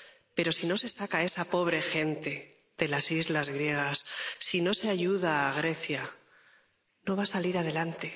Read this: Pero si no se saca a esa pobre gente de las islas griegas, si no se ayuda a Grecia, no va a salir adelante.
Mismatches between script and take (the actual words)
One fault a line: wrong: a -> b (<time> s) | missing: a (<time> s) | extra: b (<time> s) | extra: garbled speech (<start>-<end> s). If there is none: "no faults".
no faults